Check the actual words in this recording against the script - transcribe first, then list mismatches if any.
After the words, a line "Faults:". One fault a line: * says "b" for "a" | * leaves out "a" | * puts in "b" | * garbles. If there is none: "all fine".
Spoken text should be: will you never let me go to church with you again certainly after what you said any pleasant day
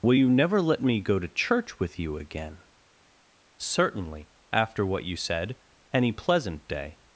will you never let me go to church with you again certainly after what you said any pleasant day
Faults:
all fine